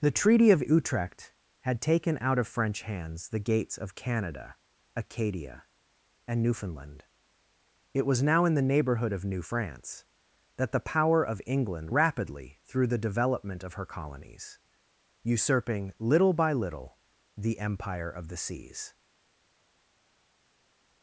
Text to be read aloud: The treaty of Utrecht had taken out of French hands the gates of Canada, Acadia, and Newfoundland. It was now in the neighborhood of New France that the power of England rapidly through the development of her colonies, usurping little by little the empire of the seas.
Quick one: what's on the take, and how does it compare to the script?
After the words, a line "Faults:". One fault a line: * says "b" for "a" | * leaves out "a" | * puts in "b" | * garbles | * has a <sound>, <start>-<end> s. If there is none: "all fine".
The treaty of Utrecht had taken out of French hands the gates of Canada, Acadia, and Newfoundland. It was now in the neighborhood of New France that the power of England rapidly through the development of her colonies, usurping little by little the empire of the seas.
Faults:
all fine